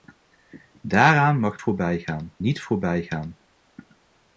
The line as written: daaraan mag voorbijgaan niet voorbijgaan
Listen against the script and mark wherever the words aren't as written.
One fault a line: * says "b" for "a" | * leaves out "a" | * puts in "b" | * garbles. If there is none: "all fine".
all fine